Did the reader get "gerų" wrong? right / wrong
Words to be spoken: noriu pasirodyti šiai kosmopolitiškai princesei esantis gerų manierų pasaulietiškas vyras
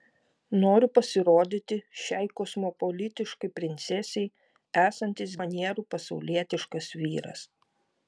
wrong